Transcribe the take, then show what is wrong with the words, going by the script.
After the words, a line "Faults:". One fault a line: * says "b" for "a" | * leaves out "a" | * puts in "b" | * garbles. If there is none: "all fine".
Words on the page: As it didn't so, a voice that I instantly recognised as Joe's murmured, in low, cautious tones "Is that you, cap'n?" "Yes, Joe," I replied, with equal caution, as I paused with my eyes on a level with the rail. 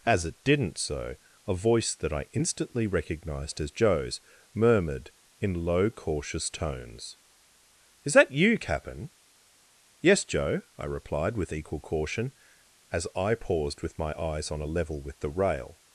As it didn't so, a voice that I instantly recognised as Joe's murmured, in low, cautious tones "Is that you, cap'n?" "Yes, Joe," I replied, with equal caution, as I paused with my eyes on a level with the rail.
Faults:
all fine